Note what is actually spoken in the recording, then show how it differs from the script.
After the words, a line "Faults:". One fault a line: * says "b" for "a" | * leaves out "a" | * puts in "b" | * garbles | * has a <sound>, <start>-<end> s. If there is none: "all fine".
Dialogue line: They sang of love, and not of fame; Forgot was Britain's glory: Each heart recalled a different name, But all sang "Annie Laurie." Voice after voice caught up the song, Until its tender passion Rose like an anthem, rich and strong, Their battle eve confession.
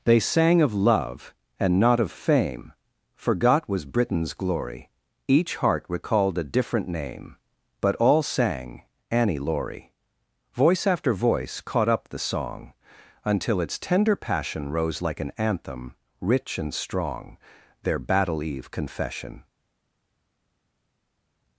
They sang of love, and not of fame; Forgot was Britain's glory: Each heart recalled a different name, But all sang "Annie Laurie." Voice after voice caught up the song, Until its tender passion Rose like an anthem, rich and strong, Their battle eve confession.
Faults:
all fine